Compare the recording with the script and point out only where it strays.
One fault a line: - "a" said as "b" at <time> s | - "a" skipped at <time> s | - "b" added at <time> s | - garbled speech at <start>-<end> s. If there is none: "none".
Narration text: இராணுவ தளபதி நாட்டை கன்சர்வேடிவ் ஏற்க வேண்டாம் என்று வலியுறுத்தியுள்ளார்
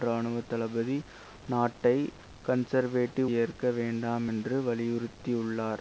none